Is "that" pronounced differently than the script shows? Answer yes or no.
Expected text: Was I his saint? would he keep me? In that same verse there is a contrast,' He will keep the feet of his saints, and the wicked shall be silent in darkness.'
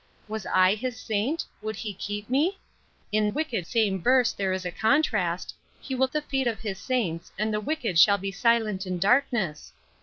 yes